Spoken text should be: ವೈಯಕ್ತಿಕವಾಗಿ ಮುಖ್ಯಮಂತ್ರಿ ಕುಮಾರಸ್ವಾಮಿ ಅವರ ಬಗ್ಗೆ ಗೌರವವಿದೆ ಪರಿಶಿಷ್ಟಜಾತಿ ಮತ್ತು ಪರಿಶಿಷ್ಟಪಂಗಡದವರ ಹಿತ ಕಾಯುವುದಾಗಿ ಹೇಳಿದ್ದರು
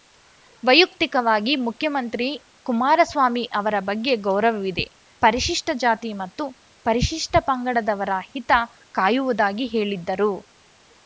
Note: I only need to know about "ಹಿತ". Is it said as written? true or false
true